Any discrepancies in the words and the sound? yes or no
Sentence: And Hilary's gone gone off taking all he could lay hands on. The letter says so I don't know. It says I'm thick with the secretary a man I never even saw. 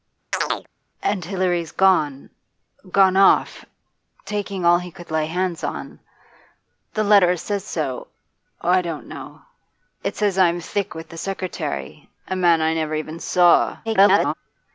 yes